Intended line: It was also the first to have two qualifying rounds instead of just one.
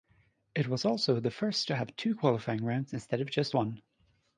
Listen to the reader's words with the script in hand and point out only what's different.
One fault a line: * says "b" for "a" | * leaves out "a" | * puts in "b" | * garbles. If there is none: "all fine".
all fine